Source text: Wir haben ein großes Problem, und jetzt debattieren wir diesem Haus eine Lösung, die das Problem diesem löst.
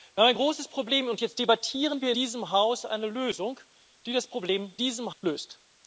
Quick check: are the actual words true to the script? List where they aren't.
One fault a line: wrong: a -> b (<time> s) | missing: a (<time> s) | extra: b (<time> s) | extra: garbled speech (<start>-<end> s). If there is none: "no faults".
no faults